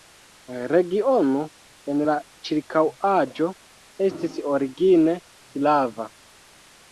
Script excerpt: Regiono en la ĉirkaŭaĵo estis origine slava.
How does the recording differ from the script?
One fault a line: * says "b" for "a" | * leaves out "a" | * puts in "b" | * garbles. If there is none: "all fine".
all fine